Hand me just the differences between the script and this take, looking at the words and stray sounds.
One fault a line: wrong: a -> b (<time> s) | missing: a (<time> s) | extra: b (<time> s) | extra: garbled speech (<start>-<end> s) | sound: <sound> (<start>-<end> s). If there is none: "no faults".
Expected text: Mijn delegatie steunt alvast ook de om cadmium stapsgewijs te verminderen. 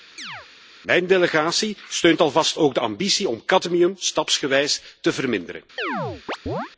sound: chirp (0.2-0.5 s)
extra: ambitie (2.8 s)
sound: chirp (5.8-6.7 s)